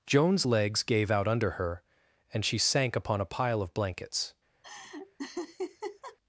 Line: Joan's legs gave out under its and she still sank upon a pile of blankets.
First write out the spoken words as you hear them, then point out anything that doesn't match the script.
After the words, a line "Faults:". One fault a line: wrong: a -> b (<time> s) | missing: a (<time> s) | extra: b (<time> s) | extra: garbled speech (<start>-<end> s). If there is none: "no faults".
Joan's legs gave out under her and she sank upon a pile of blankets.
Faults:
wrong: its -> her (1.5 s)
missing: still (2.6 s)